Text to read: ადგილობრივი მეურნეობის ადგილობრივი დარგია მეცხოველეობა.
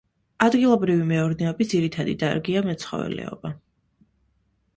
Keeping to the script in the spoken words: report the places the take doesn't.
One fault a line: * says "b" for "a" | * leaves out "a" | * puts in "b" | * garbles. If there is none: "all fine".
* says "ძირითადი" for "ადგილობრივი"